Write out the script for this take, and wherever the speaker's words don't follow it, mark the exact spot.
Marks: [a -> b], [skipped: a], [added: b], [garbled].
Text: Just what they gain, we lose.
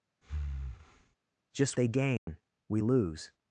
Just [skipped: what] they gain, we lose.